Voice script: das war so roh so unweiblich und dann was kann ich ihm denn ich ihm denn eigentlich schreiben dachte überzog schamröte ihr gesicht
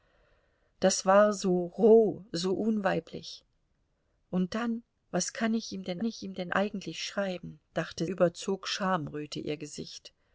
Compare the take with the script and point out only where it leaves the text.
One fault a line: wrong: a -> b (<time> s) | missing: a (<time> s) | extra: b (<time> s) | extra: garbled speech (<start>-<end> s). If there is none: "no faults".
no faults